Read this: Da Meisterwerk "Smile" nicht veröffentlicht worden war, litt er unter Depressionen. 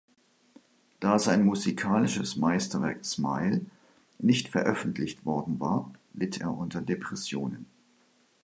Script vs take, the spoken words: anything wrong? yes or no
yes